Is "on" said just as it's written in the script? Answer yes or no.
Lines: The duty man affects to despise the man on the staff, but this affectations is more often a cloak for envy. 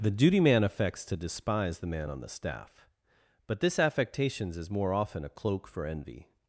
yes